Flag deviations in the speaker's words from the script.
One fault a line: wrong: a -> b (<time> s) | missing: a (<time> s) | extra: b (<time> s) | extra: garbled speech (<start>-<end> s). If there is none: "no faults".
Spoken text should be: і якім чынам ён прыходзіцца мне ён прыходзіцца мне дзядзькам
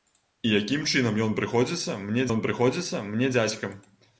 no faults